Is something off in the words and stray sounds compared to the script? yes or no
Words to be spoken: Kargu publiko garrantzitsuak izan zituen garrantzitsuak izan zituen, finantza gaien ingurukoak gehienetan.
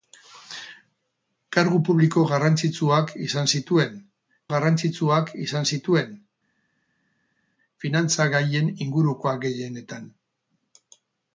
no